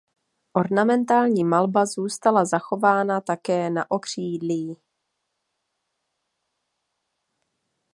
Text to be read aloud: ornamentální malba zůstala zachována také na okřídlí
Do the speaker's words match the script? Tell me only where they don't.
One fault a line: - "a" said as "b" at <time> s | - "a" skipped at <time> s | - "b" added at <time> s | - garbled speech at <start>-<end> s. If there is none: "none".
none